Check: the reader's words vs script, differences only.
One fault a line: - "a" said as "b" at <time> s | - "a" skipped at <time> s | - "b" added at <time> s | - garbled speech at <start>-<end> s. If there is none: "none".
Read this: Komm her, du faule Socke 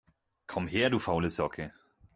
none